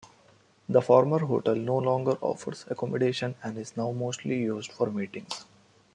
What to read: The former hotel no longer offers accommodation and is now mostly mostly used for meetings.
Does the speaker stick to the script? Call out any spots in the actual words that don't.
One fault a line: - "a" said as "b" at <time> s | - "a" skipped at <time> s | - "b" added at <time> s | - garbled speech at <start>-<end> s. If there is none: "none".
- "mostly" skipped at 4.4 s